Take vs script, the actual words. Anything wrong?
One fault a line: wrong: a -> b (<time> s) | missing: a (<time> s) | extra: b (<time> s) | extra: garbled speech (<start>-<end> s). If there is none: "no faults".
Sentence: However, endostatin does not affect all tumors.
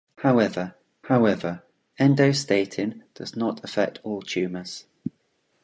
extra: however (1.1 s)